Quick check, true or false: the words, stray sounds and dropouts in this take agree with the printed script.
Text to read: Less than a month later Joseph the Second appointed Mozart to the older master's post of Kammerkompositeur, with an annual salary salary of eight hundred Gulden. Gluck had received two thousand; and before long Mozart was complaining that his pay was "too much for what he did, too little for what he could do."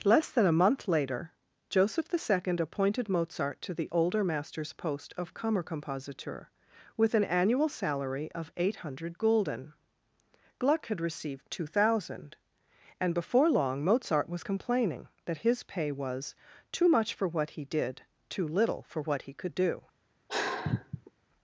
false